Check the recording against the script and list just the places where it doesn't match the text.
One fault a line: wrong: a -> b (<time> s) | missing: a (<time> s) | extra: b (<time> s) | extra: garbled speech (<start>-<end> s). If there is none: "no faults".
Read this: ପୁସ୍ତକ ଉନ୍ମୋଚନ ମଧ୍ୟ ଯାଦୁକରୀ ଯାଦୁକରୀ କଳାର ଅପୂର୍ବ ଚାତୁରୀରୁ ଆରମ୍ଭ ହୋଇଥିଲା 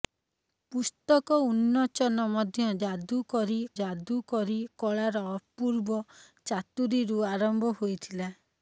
no faults